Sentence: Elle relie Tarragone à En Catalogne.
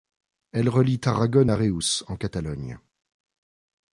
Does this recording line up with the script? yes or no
no